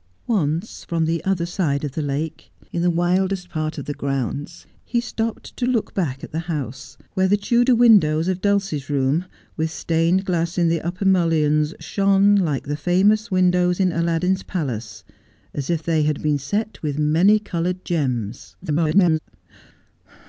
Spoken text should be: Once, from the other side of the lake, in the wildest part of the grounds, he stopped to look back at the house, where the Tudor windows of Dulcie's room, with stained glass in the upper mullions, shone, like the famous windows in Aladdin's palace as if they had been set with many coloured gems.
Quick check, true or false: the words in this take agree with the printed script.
false